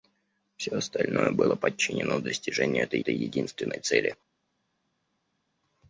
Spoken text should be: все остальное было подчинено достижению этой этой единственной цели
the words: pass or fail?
pass